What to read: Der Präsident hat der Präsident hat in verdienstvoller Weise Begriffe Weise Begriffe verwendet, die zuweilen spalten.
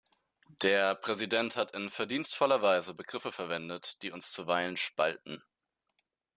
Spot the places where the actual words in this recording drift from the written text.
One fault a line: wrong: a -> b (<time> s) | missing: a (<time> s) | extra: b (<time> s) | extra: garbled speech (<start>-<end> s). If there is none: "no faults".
missing: der Präsident hat (1.8 s)
missing: Weise Begriffe (3.3 s)
extra: uns (4.1 s)